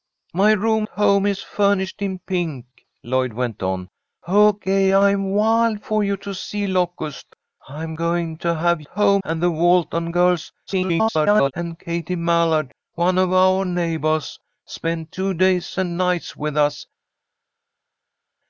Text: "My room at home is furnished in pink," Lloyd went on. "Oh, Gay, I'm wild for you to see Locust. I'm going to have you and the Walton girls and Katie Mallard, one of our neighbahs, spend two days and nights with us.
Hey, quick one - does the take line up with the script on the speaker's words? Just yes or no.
no